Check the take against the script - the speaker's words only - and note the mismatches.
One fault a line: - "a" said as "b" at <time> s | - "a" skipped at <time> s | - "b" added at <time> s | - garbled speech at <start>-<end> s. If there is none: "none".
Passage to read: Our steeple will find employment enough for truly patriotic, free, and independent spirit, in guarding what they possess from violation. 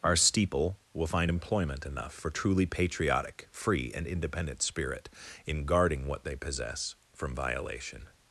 none